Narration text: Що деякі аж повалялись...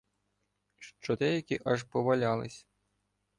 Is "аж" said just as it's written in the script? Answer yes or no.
yes